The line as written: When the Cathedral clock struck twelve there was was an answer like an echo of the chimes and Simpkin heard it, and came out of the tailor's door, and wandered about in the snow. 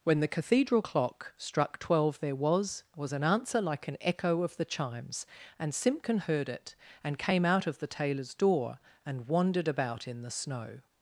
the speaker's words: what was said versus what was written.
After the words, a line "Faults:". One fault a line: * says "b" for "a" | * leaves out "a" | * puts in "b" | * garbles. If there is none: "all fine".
When the Cathedral clock struck twelve there was was an answer like an echo of the chimes and Simpkin heard it, and came out of the tailor's door, and wandered about in the snow.
Faults:
all fine